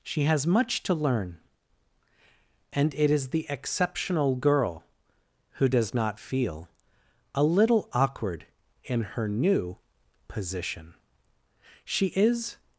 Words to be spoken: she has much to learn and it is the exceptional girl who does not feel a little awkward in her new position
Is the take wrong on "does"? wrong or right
right